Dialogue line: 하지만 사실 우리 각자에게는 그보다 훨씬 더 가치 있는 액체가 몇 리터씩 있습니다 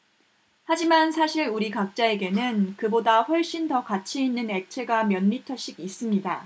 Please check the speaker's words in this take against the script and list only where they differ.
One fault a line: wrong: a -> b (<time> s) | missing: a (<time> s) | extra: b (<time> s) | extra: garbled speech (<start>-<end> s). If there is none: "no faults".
no faults